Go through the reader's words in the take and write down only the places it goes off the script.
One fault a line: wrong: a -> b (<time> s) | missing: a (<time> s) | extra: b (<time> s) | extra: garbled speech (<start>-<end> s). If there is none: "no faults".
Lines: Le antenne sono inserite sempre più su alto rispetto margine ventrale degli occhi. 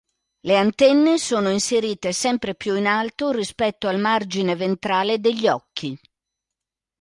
wrong: su -> in (2.8 s)
extra: al (3.9 s)